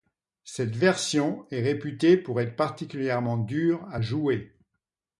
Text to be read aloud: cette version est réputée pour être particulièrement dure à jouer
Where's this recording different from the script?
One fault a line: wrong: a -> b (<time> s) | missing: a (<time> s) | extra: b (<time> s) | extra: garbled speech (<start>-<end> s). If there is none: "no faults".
no faults